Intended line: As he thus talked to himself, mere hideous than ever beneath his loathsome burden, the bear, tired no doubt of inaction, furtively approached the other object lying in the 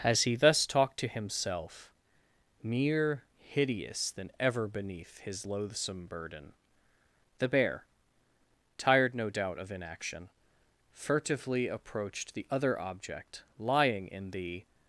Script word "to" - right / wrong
right